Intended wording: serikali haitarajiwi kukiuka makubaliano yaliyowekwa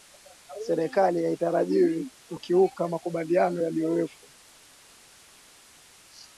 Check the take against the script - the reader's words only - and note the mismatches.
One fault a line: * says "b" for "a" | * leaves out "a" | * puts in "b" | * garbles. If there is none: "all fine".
all fine